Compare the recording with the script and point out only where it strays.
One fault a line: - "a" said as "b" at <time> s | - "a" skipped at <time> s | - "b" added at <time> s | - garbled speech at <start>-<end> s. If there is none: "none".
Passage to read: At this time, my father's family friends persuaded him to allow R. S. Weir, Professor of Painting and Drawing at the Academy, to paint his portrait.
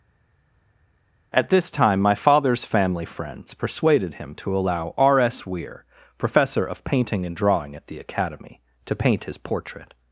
none